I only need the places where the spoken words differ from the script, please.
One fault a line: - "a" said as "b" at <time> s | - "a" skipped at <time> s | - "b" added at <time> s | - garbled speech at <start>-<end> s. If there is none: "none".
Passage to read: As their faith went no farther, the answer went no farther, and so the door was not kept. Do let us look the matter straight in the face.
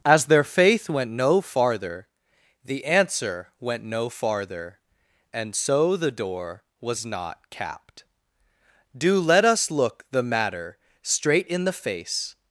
- "kept" said as "capped" at 7.5 s